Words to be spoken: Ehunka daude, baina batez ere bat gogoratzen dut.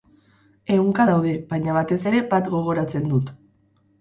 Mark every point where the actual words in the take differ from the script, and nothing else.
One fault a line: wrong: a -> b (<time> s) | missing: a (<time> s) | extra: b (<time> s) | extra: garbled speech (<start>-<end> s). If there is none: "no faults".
no faults